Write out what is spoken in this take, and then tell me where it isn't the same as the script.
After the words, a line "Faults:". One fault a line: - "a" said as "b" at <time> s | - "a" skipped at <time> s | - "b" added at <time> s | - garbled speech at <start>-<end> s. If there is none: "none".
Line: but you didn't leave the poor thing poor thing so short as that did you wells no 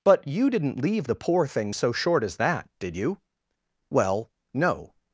but you didn't leave the poor thing so short as that did you well no
Faults:
- "poor thing" skipped at 1.7 s
- "wells" said as "well" at 3.9 s